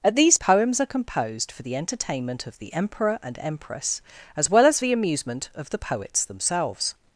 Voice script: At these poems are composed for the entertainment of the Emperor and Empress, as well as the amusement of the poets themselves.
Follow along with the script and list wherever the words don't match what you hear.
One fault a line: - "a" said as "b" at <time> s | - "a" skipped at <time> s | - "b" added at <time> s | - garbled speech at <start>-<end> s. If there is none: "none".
none